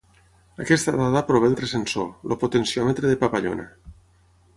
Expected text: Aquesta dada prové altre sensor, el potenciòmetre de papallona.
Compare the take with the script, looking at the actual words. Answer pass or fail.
pass